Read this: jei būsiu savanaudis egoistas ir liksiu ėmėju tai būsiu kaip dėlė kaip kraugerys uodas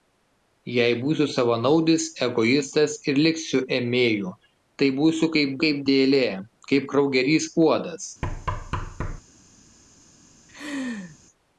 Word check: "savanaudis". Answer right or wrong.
right